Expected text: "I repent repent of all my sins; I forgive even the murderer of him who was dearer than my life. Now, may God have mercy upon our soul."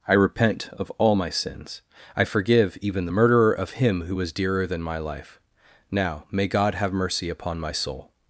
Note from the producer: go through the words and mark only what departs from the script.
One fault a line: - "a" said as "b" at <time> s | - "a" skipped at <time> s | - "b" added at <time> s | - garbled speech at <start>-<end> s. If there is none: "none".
- "repent" skipped at 0.7 s
- "our" said as "my" at 7.6 s